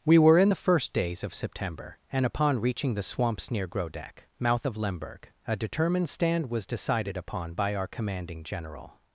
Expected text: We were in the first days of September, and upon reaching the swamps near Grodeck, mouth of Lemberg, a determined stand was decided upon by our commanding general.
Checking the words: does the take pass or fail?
pass